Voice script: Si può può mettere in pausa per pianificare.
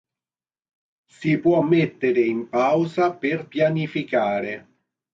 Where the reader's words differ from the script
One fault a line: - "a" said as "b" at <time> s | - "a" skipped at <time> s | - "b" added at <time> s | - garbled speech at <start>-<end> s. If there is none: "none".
- "può" skipped at 1.6 s